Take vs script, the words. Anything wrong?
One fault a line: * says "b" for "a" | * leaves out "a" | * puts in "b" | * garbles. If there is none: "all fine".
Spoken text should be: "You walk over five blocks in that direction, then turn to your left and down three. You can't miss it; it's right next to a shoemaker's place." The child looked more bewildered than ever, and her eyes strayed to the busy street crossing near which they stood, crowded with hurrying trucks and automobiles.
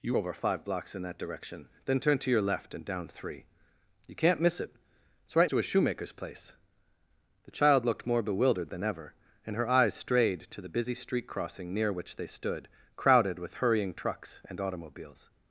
* leaves out "walk"
* leaves out "next"